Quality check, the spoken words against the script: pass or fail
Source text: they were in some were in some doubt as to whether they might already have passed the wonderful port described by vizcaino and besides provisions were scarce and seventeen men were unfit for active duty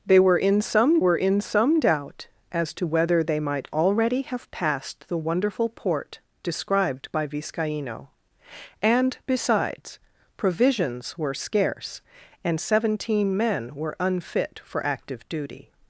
pass